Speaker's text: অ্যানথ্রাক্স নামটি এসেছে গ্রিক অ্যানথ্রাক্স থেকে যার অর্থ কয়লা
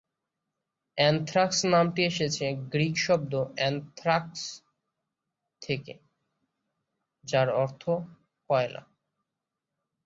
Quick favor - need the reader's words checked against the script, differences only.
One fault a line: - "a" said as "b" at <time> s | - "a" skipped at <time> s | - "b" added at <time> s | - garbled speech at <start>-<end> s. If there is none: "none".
- "শব্দ" added at 3.0 s